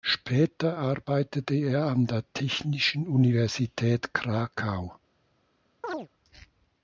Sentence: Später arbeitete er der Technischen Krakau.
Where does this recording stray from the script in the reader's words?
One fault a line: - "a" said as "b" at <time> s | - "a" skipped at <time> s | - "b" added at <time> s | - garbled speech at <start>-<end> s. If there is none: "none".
- "an" added at 1.9 s
- "Universität" added at 3.1 s